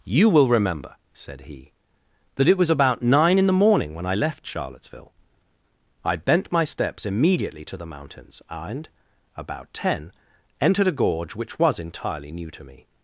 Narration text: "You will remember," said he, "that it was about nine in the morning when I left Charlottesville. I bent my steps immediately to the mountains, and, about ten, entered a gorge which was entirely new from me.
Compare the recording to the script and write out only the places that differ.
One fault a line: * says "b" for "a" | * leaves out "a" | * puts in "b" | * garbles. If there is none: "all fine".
* says "to" for "from"